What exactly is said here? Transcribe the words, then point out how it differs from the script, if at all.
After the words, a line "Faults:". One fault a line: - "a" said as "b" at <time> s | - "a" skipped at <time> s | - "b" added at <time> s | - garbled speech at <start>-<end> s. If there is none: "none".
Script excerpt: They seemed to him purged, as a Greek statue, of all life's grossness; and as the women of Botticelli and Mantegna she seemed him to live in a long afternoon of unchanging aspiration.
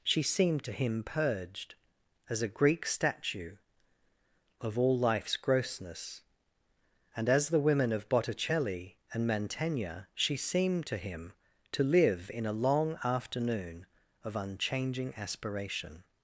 She seemed to him purged, as a Greek statue, of all life's grossness; and as the women of Botticelli and Mantegna she seemed to him to live in a long afternoon of unchanging aspiration.
Faults:
- "They" said as "She" at 0.0 s
- "to" added at 10.9 s